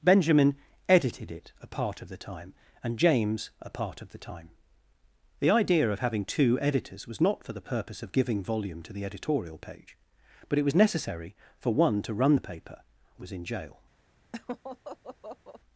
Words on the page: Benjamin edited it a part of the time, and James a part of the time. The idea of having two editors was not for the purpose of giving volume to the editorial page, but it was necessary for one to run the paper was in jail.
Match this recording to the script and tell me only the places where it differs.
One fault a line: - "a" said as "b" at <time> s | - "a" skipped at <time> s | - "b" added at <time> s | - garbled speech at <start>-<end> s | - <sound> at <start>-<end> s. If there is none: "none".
- laugh at 14.3-15.6 s